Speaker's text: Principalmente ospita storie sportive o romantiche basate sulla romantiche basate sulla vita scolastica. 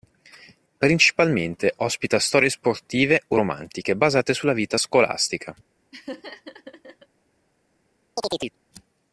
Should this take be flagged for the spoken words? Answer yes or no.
yes